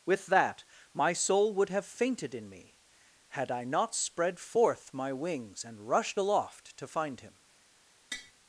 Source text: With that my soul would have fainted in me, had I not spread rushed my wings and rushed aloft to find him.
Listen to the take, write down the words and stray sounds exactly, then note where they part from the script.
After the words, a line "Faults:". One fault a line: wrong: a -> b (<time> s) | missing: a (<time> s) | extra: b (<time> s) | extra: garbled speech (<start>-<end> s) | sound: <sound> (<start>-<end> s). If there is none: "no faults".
With that my soul would have fainted in me, had I not spread forth my wings and rushed aloft to find him.
Faults:
wrong: rushed -> forth (4.4 s)
sound: tap (8.1-8.3 s)